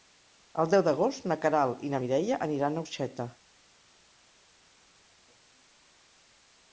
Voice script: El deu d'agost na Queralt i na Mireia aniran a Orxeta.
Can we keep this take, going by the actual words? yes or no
yes